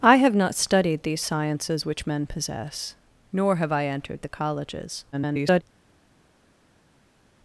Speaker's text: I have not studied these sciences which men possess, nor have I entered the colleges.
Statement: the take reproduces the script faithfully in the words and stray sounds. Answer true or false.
false